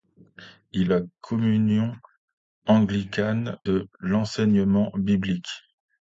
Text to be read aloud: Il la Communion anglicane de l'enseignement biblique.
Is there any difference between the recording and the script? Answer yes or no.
no